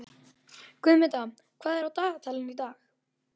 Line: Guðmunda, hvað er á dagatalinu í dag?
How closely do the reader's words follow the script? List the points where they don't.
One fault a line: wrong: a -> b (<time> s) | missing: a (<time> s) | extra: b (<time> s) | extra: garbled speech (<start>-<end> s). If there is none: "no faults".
no faults